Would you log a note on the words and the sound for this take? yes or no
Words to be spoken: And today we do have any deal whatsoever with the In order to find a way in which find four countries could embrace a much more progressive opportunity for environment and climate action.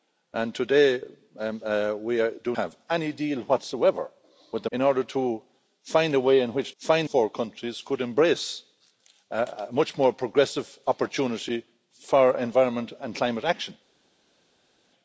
no